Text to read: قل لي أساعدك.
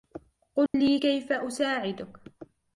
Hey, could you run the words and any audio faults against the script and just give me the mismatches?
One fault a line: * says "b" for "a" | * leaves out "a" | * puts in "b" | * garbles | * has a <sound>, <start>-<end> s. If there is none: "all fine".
* has a dropout, 0.7-0.7 s
* puts in "كيف"